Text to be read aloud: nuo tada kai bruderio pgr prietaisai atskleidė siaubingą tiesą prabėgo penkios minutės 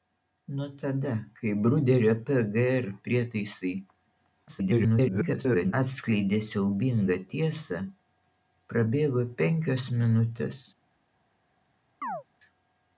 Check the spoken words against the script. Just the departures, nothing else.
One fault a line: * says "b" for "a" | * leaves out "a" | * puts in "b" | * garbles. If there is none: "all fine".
* garbles